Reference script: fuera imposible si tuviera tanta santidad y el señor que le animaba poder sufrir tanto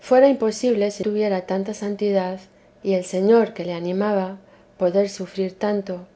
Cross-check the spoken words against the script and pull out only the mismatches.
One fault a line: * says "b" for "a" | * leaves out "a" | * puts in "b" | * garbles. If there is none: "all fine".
all fine